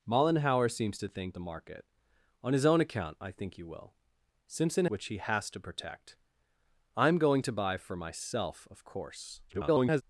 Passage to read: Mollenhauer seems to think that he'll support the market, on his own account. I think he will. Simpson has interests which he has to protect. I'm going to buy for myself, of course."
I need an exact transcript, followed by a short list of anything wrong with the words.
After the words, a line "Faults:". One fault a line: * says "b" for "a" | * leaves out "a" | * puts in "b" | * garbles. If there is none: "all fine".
Mollenhauer seems to think the market, on his own account. I think he will. Simpson which he has to protect. I'm going to buy for myself, of course." [garbled]
Faults:
* leaves out "that he'll support"
* leaves out "has interests"
* garbles